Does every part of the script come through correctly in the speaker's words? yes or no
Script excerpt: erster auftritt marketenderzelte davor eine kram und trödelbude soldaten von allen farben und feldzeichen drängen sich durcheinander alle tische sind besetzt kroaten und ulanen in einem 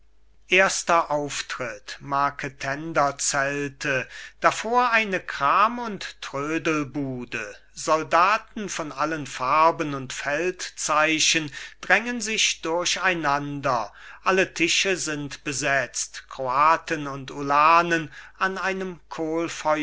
no